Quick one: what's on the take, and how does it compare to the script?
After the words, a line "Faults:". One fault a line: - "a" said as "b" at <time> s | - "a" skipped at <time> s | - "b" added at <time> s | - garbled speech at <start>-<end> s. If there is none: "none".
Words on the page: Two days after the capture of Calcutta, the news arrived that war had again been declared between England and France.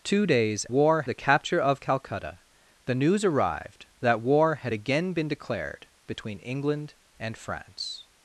Two days war the capture of Calcutta, the news arrived that war had again been declared between England and France.
Faults:
- "after" said as "war" at 0.7 s